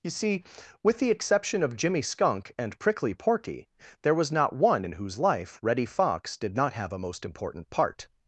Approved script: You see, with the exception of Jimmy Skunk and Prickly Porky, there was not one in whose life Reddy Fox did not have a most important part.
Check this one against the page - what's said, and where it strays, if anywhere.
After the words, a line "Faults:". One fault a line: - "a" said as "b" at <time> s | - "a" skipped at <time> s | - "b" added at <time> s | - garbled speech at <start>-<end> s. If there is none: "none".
You see, with the exception of Jimmy Skunk and Prickly Porky, there was not one in whose life Reddy Fox did not have a most important part.
Faults:
none